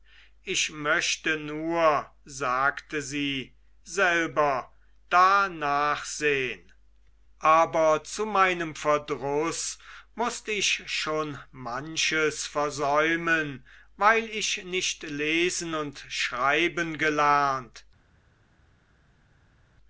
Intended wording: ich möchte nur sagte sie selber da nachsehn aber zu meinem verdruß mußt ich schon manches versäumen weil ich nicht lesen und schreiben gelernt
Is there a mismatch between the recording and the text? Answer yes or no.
no